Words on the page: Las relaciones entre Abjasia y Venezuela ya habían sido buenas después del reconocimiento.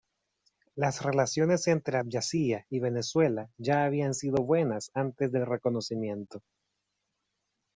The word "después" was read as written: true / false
false